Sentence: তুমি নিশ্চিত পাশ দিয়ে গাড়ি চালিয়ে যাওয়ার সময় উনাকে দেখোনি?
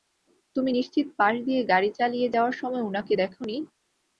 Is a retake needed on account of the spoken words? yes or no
no